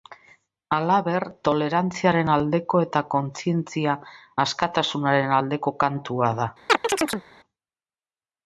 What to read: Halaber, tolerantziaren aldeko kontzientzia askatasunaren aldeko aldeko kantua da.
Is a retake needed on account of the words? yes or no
yes